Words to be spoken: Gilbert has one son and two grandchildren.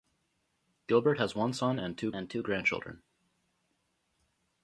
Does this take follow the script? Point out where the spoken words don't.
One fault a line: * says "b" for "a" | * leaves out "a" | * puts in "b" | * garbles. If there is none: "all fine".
* puts in "and two"